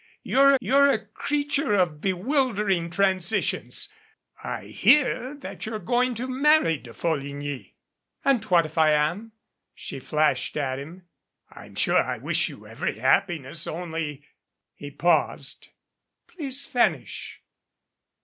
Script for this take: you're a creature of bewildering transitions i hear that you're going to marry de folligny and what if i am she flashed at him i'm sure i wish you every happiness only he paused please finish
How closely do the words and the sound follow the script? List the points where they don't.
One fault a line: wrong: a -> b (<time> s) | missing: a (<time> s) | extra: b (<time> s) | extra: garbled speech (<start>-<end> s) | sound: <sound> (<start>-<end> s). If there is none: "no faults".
extra: you're (0.6 s)